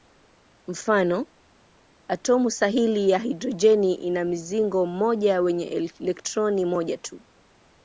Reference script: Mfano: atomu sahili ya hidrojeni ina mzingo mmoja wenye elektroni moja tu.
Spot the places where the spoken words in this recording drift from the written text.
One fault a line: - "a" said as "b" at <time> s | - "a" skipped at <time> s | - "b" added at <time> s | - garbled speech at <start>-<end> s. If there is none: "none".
none